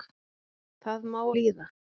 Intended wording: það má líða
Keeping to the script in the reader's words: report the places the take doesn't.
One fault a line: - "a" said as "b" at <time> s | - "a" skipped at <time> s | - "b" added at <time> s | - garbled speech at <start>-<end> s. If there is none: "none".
none